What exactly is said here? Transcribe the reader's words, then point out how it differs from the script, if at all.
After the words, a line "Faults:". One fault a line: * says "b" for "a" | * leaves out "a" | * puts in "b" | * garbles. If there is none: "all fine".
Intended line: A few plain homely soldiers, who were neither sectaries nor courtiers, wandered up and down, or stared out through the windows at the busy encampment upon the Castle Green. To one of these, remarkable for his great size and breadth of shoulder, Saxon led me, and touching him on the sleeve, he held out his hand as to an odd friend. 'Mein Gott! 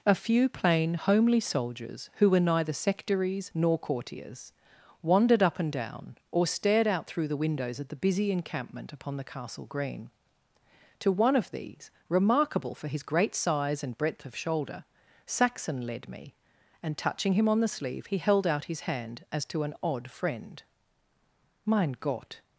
A few plain homely soldiers, who were neither sectaries nor courtiers, wandered up and down, or stared out through the windows at the busy encampment upon the Castle Green. To one of these, remarkable for his great size and breadth of shoulder, Saxon led me, and touching him on the sleeve, he held out his hand as to an odd friend. 'Mein Gott!
Faults:
all fine